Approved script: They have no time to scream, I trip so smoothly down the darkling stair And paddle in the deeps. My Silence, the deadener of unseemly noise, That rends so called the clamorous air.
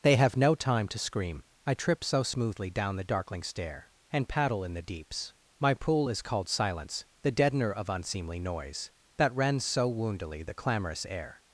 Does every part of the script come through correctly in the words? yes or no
no